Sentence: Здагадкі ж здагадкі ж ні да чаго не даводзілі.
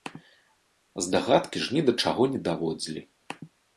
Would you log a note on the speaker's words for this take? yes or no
yes